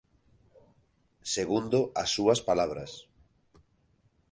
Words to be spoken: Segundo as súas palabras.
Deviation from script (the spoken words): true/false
false